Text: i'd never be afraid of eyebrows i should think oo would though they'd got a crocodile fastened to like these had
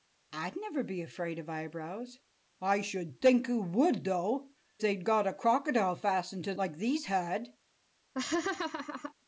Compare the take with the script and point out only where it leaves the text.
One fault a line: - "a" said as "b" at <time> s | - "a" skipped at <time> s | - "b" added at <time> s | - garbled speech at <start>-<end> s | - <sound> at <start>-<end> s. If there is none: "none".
- laugh at 8.1-9.1 s